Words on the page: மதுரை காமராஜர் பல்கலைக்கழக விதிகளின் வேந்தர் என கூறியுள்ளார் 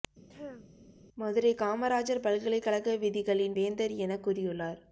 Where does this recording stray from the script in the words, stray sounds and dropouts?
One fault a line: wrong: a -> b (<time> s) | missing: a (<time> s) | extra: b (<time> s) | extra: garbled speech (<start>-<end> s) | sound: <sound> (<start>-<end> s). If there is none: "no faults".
sound: throat clearing (0.3-0.7 s)